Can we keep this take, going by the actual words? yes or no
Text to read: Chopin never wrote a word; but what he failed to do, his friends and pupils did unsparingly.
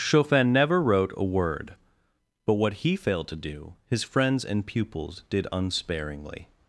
yes